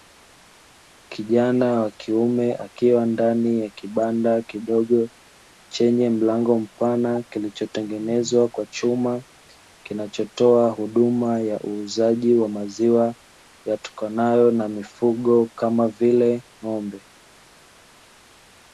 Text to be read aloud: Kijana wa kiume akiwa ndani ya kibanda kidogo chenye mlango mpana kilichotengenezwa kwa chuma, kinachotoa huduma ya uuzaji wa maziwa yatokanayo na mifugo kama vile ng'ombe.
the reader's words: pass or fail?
pass